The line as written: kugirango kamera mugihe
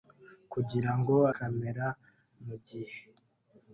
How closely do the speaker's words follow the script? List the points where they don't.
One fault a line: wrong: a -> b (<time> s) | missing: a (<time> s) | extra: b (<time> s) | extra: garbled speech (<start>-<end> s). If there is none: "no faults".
no faults